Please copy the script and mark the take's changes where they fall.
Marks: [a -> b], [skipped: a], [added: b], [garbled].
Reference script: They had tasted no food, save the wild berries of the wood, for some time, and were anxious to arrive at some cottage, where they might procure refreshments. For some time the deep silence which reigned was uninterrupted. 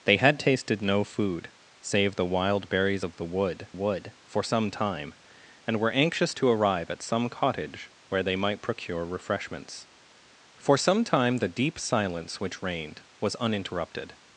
They had tasted no food, save the wild berries of the wood, [added: wood] for some time, and were anxious to arrive at some cottage, where they might procure refreshments. For some time the deep silence which reigned was uninterrupted.